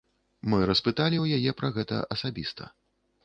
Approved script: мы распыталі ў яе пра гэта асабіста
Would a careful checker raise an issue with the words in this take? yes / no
no